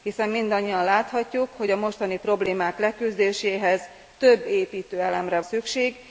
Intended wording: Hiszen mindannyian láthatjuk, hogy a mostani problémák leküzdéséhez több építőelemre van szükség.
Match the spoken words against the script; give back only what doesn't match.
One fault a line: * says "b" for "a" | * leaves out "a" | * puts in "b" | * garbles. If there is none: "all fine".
* leaves out "van"